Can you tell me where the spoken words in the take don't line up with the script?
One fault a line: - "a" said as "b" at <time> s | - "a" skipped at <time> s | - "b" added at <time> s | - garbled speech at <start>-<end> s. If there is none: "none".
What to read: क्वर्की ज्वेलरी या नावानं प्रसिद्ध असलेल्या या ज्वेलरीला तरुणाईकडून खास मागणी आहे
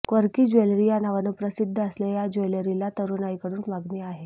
- "खास" skipped at 3.6 s